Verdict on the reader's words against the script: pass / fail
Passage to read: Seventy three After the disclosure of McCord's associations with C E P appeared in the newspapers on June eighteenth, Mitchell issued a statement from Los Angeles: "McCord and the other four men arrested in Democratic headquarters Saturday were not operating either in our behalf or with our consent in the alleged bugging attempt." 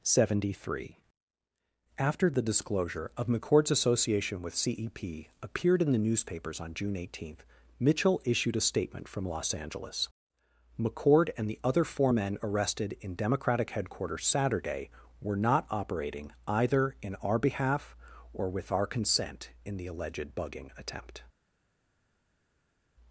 fail